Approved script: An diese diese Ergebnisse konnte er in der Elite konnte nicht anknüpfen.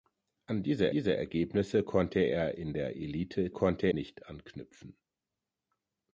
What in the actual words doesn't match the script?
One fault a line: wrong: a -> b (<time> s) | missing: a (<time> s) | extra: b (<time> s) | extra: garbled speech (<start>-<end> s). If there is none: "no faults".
no faults